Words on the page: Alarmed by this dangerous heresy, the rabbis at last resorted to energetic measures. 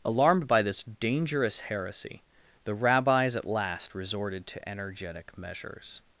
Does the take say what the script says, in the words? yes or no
yes